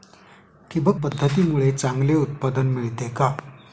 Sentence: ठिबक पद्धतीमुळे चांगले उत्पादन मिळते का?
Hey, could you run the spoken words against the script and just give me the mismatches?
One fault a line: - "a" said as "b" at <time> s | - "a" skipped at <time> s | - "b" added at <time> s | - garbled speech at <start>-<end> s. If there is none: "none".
none